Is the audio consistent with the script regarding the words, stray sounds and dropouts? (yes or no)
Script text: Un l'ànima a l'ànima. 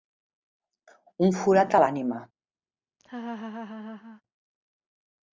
no